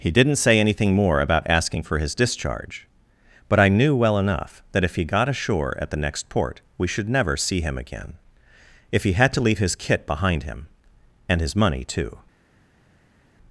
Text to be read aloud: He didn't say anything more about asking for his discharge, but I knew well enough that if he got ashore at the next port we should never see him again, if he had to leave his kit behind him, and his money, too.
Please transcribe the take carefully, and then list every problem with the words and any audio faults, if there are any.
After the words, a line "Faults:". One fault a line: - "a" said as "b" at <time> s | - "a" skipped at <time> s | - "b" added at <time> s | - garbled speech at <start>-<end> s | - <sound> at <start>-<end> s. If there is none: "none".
He didn't say anything more about asking for his discharge, but I knew well enough that if he got ashore at the next port we should never see him again, if he had to leave his kit behind him, and his money, too.
Faults:
none